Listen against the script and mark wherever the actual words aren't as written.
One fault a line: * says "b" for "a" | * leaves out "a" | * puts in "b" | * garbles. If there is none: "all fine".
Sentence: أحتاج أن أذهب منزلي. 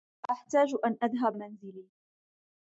all fine